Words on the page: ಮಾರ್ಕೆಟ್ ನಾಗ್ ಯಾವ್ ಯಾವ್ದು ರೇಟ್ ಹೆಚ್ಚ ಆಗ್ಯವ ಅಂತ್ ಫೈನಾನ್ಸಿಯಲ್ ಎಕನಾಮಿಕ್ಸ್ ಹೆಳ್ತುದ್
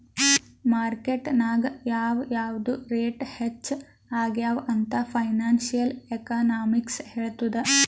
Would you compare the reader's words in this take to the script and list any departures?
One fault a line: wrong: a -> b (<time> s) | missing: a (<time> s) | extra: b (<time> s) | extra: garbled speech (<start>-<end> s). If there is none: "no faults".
no faults